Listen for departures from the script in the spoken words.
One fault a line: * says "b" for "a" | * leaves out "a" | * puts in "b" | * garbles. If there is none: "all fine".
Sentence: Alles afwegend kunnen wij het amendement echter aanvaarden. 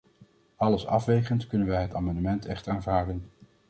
all fine